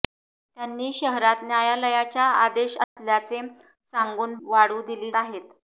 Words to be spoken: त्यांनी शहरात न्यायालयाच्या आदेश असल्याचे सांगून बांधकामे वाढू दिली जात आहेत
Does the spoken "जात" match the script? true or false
false